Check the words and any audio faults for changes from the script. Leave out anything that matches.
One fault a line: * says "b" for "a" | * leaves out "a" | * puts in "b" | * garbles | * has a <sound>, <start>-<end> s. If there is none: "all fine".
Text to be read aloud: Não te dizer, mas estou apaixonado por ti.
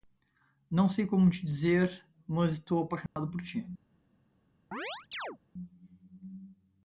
* puts in "sei como"
* has a dropout, 3.1-3.2 s
* has a chirp, 4.7-5.4 s